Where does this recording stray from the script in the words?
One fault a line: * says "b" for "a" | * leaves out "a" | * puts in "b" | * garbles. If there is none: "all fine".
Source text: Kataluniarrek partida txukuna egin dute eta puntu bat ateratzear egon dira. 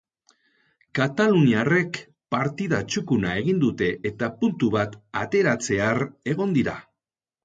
all fine